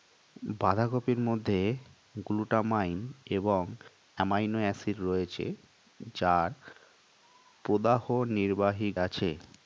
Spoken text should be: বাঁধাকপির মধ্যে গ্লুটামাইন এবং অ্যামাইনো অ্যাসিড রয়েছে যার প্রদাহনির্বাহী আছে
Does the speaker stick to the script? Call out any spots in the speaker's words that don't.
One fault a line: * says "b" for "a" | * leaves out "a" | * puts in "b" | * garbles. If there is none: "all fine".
all fine